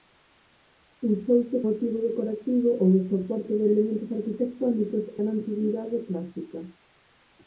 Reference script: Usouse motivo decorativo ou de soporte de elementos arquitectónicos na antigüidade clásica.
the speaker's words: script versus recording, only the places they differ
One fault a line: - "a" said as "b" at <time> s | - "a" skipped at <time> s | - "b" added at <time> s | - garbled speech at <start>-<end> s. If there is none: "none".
none